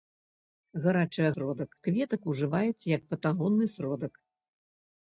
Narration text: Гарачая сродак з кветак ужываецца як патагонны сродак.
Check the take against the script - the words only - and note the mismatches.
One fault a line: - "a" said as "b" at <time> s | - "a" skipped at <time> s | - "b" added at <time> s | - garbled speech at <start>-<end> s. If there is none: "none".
none